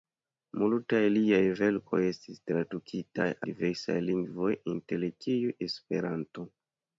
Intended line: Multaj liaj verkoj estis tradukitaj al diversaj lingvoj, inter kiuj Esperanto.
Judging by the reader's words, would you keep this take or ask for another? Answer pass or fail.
fail